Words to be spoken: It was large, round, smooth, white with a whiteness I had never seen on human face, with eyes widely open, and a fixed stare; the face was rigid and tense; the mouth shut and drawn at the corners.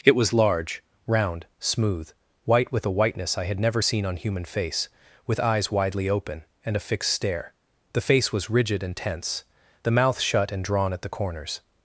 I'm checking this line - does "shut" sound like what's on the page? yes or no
yes